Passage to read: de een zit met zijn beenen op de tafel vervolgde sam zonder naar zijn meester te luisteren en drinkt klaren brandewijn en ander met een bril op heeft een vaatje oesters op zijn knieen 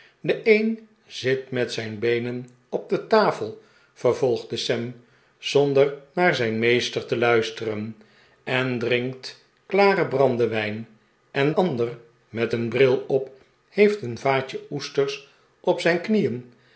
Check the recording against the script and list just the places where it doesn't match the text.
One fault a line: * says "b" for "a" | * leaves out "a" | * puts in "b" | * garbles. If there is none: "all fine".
all fine